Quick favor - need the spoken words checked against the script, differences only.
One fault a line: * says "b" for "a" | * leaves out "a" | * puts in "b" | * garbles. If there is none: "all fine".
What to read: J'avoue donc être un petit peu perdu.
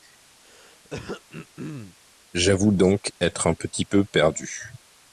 all fine